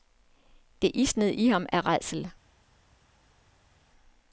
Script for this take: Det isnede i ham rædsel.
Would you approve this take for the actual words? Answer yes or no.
no